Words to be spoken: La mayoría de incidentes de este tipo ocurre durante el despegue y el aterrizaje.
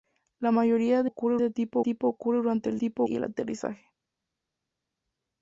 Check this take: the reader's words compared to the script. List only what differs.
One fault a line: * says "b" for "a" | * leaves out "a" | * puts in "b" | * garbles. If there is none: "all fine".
* says "ocurre" for "incidentes"
* puts in "tipo"
* says "tipo" for "despegue"